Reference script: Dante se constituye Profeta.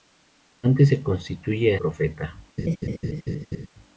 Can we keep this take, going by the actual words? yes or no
yes